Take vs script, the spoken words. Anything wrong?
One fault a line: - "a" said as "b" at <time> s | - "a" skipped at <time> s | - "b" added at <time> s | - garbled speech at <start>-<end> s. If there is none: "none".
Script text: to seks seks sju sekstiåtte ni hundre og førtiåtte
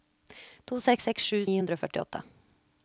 - "sekstiåtte" skipped at 1.4 s